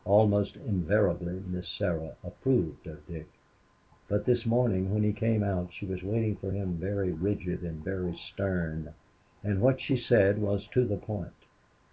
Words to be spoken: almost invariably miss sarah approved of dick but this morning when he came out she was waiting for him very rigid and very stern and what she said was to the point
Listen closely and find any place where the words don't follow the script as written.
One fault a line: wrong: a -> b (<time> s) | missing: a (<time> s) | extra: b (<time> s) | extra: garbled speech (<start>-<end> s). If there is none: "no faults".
no faults